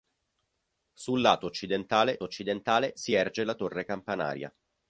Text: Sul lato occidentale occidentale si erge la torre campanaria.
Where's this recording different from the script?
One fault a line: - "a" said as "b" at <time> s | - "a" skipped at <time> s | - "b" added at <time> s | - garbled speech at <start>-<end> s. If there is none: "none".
none